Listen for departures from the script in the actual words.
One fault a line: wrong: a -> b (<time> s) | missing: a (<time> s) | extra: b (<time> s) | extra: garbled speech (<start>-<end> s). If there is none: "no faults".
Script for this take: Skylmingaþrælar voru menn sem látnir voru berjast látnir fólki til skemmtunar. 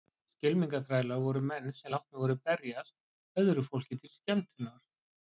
wrong: látnir -> öðru (3.4 s)